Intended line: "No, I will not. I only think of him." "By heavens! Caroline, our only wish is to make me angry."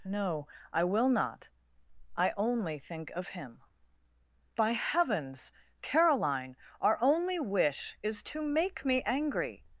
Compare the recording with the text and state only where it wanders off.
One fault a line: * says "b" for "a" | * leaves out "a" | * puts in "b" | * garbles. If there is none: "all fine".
all fine